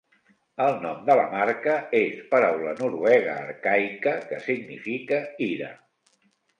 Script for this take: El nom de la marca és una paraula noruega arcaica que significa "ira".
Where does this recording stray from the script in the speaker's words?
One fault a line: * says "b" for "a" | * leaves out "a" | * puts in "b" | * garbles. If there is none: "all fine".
* leaves out "una"